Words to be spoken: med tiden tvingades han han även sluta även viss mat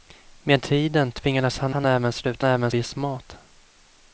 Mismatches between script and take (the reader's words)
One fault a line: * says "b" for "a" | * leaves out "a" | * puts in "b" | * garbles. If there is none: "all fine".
all fine